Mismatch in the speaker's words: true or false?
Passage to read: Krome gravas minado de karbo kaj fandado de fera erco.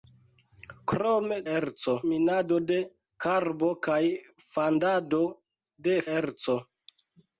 true